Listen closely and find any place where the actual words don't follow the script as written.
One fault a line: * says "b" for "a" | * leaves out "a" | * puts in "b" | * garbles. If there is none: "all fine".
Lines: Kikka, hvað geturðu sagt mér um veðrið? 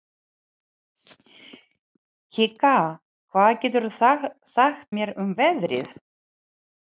all fine